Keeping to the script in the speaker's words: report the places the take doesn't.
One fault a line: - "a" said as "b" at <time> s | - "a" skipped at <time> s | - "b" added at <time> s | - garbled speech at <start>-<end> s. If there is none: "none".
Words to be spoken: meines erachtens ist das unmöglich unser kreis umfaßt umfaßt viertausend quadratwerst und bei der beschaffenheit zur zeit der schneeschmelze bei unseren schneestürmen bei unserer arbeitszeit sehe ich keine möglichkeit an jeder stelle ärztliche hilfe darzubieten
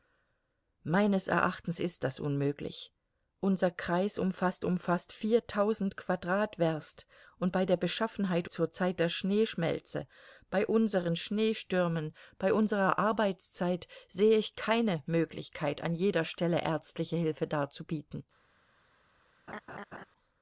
none